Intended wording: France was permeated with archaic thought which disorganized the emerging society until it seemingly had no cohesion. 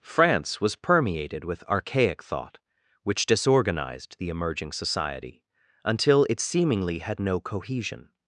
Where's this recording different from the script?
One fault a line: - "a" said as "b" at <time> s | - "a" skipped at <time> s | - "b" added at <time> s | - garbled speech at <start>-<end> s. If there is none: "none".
none